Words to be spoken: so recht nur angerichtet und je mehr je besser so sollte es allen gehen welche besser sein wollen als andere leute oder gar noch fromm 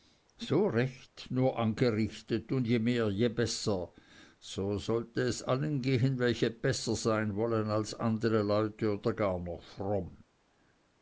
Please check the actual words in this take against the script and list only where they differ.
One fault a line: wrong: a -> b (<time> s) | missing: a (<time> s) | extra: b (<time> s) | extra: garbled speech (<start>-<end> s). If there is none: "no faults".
no faults